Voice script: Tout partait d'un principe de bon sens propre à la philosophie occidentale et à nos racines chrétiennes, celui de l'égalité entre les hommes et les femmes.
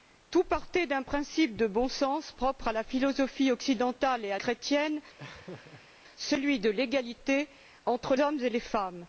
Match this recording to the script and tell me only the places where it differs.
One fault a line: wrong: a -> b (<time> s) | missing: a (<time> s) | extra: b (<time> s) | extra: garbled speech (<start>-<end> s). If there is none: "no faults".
missing: nos racines (4.4 s)
missing: les (8.1 s)